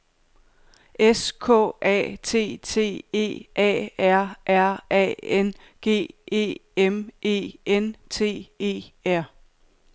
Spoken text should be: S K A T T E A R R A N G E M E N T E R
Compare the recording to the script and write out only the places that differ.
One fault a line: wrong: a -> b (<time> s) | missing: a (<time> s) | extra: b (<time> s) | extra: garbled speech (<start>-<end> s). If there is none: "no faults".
no faults